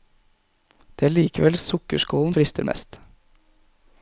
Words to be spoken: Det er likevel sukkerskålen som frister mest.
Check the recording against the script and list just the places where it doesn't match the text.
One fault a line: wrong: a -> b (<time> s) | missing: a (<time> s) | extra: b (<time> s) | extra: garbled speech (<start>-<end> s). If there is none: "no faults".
missing: som (2.3 s)